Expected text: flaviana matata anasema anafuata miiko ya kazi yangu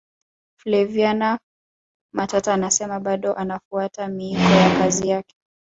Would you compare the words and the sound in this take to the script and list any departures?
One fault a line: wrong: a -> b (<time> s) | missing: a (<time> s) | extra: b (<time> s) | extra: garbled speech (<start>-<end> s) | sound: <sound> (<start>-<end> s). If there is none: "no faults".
extra: bado (3.0 s)
wrong: yangu -> yake (5.1 s)